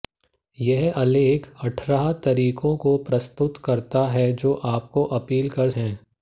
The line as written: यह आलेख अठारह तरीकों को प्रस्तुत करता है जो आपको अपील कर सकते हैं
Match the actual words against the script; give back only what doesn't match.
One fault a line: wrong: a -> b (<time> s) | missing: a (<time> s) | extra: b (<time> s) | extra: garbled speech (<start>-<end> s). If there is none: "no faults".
missing: सकते (5.7 s)